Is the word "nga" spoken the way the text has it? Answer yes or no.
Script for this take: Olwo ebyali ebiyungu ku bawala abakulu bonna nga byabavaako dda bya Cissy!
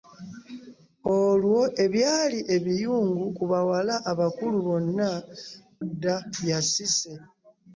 no